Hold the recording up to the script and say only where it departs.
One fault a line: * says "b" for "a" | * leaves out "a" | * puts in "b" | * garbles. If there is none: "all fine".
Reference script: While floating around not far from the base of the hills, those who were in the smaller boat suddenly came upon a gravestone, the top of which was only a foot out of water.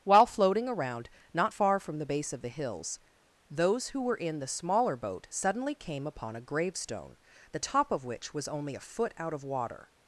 all fine